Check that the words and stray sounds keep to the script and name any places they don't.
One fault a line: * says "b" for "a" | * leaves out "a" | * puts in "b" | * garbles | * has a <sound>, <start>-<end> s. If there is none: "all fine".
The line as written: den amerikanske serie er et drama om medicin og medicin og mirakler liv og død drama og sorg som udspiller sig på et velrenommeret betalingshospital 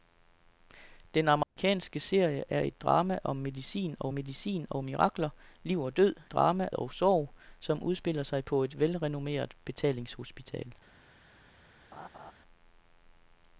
* has a dropout, 1.4-1.6 s
* has a laugh, 11.9-12.3 s